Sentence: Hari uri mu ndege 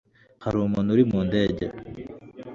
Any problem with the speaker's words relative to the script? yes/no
yes